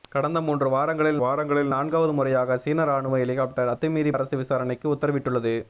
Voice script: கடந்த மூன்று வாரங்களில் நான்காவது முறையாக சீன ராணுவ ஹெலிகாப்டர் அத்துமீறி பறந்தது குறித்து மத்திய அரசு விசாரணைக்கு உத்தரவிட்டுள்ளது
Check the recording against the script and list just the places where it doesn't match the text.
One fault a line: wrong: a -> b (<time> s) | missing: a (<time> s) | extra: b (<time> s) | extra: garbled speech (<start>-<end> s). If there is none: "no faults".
extra: வாரங்களில் (1.2 s)
missing: பறந்தது குறித்து மத்திய (4.1 s)